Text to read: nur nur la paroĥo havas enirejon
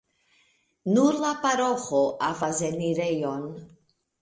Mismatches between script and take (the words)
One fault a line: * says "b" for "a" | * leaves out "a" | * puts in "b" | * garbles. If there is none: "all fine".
* leaves out "nur"